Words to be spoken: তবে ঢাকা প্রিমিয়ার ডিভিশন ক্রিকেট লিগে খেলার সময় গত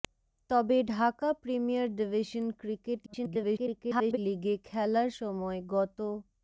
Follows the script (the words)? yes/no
no